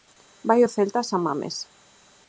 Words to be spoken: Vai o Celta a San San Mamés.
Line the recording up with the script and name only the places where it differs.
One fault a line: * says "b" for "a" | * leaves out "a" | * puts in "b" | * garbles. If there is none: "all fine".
* leaves out "San"